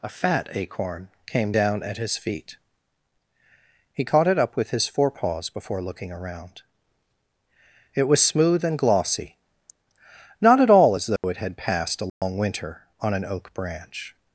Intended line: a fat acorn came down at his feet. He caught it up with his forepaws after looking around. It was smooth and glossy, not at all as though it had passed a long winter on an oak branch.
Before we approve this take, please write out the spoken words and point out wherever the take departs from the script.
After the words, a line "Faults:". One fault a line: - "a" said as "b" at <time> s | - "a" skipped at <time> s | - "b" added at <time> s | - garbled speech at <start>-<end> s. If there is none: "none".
a fat acorn came down at his feet. He caught it up with his forepaws before looking around. It was smooth and glossy, not at all as though it had passed a long winter on an oak branch.
Faults:
- "after" said as "before" at 5.5 s